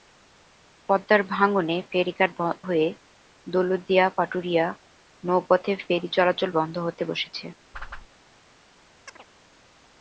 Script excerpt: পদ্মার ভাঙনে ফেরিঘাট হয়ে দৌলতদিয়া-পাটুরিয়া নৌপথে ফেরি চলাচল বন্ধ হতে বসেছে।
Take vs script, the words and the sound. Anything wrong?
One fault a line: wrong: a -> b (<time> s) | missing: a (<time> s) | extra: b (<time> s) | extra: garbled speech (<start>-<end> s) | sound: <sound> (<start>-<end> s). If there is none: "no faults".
sound: whoosh (7.7-8.1 s)
sound: chirp (9.1-9.3 s)